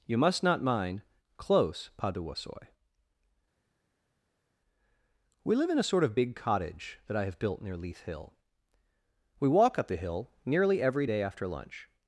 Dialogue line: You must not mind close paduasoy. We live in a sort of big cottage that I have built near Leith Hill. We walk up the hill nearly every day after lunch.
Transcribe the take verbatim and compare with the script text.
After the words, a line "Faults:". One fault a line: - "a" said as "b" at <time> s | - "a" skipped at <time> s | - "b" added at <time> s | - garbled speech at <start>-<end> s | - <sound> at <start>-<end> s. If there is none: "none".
You must not mind close paduasoy. We live in a sort of big cottage that I have built near Leith Hill. We walk up the hill nearly every day after lunch.
Faults:
none